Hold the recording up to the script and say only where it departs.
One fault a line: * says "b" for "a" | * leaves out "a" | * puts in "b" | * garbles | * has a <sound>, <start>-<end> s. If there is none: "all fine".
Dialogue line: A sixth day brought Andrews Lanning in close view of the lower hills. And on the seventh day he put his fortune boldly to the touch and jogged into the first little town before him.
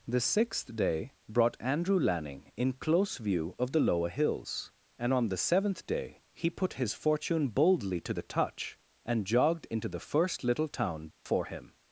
* says "The" for "A"
* says "Andrew" for "Andrews"
* has a dropout, 11.1-11.3 s